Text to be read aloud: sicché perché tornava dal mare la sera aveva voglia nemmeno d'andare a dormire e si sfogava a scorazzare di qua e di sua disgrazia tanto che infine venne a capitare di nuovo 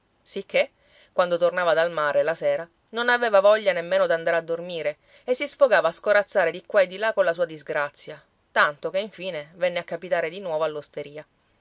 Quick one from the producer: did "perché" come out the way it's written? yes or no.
no